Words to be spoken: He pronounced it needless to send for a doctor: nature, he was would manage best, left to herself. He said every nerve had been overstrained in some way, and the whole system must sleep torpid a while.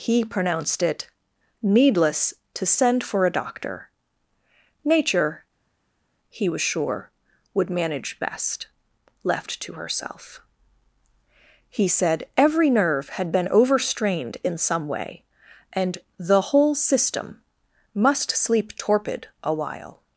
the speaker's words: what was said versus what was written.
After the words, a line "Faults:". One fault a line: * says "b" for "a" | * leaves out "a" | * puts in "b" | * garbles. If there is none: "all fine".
He pronounced it needless to send for a doctor: nature, he was sure, would manage best, left to herself. He said every nerve had been overstrained in some way, and the whole system must sleep torpid a while.
Faults:
* puts in "sure"